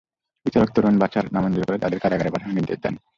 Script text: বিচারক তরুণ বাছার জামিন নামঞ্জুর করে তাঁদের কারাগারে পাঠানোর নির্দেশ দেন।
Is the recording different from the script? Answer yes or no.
yes